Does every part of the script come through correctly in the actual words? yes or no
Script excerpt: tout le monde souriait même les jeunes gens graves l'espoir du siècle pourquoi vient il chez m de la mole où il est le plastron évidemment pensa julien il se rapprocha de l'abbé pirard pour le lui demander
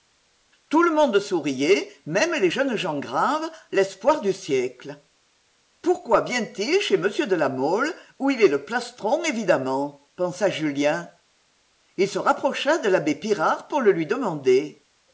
yes